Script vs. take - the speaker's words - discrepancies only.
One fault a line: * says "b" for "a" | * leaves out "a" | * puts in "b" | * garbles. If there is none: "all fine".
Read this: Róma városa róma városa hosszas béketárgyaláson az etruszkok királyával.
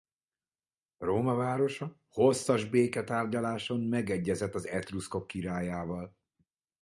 * leaves out "róma városa"
* puts in "megegyezett"